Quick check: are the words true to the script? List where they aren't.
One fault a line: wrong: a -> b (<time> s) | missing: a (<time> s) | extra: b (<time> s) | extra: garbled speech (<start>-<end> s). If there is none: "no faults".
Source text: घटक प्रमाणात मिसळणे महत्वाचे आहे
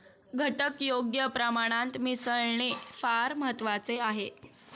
extra: योग्य (0.8 s)
extra: फार (2.9 s)